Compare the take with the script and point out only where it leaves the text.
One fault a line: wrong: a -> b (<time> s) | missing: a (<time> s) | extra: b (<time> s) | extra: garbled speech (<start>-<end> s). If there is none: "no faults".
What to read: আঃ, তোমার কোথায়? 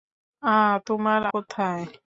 no faults